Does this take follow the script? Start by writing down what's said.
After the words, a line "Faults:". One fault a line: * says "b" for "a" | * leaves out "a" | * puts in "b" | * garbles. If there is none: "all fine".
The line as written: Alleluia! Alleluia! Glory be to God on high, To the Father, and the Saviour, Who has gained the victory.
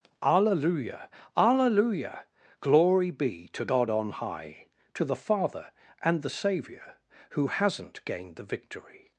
Alleluia! Alleluia! Glory be to God on high, To the Father, and the Saviour, Who hasn't gained the victory.
Faults:
* says "hasn't" for "has"